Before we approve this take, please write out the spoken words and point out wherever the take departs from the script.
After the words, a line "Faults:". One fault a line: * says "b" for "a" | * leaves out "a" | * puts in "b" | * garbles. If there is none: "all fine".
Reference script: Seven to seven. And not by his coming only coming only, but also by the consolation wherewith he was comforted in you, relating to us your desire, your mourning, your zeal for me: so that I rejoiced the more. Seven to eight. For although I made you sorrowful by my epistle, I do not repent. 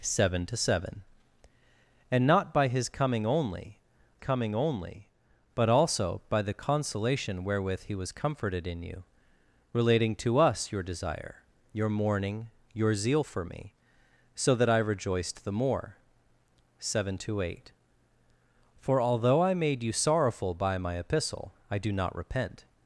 Seven to seven. And not by his coming only coming only, but also by the consolation wherewith he was comforted in you, relating to us your desire, your mourning, your zeal for me: so that I rejoiced the more. Seven to eight. For although I made you sorrowful by my epistle, I do not repent.
Faults:
all fine